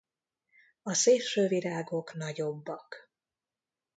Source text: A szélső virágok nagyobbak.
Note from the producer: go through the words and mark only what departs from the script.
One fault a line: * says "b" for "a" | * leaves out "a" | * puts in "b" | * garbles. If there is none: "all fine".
all fine